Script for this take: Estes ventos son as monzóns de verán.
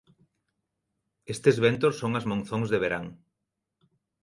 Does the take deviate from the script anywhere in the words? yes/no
no